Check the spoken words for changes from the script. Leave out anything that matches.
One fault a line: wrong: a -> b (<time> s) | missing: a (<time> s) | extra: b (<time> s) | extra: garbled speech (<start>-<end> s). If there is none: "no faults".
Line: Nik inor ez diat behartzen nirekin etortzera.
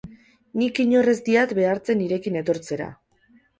no faults